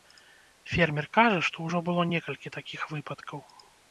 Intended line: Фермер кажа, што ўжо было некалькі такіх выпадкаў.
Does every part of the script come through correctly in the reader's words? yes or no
yes